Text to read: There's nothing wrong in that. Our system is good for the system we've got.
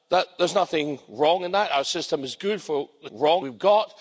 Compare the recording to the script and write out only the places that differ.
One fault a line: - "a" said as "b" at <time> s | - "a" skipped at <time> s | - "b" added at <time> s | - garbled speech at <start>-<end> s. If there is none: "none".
- "system" said as "wrong" at 3.1 s